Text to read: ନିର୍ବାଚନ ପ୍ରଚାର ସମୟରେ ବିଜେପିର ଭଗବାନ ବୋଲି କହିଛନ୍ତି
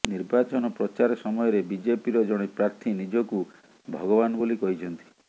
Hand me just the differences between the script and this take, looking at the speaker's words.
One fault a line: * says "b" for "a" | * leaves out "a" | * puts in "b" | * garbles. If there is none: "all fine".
* puts in "ଜଣେ ପ୍ରାର୍ଥୀ ନିଜକୁ"